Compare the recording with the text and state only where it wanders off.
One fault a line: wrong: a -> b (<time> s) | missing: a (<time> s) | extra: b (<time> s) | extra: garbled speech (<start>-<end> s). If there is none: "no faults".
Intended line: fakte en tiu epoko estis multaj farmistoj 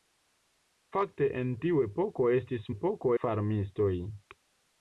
wrong: multaj -> epoko (2.7 s)